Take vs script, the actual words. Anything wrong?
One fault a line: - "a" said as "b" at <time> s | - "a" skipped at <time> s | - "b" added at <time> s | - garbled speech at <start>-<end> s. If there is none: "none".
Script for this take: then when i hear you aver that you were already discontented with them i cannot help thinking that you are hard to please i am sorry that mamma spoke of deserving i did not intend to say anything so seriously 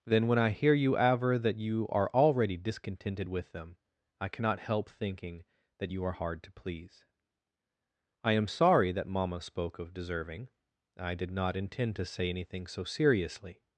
- "were" said as "are" at 1.9 s